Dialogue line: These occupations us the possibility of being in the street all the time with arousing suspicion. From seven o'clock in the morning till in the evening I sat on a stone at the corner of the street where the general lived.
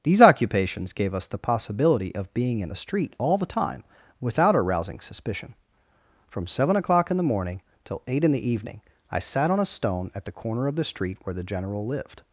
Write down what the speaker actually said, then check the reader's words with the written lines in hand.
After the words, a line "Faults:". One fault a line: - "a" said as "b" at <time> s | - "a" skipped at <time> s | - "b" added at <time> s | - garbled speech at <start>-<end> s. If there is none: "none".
These occupations gave us the possibility of being in the street all the time without arousing suspicion. From seven o'clock in the morning till eight in the evening I sat on a stone at the corner of the street where the general lived.
Faults:
- "gave" added at 0.9 s
- "with" said as "without" at 4.2 s
- "eight" added at 8.1 s